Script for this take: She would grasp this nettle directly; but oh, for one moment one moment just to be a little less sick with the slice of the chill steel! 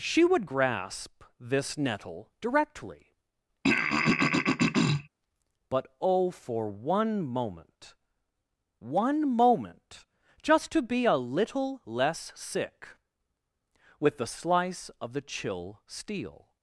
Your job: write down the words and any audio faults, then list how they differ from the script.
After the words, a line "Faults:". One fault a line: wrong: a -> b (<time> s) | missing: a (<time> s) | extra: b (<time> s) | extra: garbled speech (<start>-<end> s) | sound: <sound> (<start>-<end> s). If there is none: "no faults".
She would grasp this nettle directly; but oh, for one moment one moment just to be a little less sick with the slice of the chill steel!
Faults:
sound: throat clearing (3.6-5.1 s)